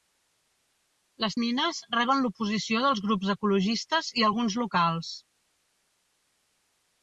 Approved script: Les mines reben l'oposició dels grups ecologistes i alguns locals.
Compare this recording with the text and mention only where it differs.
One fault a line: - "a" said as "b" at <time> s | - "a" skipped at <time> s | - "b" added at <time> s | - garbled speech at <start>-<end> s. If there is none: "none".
none